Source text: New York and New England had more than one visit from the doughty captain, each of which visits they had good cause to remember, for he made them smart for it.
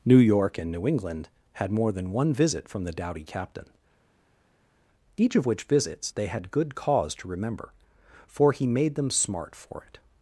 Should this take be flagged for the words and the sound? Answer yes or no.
no